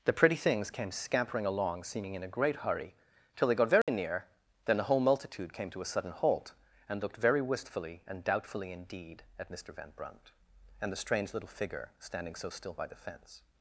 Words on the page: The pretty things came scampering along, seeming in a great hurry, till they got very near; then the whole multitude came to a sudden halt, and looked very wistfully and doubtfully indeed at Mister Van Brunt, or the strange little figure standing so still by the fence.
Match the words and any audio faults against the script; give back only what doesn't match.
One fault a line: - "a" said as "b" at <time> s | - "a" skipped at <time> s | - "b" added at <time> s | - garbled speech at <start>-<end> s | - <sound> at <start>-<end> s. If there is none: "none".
- dropout at 3.8-3.9 s
- "or" said as "and" at 10.8 s